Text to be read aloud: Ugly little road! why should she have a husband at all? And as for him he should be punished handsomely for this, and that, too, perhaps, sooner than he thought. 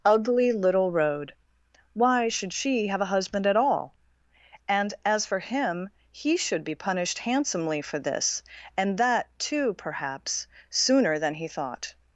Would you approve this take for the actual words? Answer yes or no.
yes